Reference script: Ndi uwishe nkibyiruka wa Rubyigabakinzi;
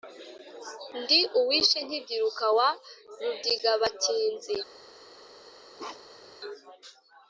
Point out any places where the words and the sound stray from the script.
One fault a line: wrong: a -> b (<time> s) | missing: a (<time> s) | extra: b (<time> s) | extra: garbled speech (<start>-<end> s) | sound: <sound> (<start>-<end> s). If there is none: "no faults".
sound: bark (5.8-6.4 s)